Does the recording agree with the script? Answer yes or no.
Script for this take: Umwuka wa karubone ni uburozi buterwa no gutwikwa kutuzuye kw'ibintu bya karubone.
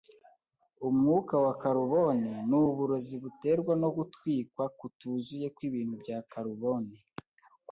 yes